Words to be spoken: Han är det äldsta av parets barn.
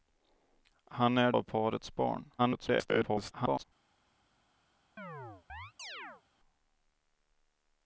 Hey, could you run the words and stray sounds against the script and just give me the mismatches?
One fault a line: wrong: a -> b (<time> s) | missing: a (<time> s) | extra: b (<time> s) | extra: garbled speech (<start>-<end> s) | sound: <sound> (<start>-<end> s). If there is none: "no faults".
missing: det äldsta (1.3 s)
extra: garbled speech (2.4-3.6 s)
sound: chirp (5.0-6.2 s)